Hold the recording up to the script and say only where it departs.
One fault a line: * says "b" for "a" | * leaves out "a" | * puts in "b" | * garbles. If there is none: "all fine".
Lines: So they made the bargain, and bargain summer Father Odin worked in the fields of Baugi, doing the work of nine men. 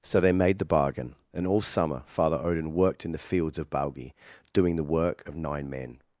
* says "all" for "bargain"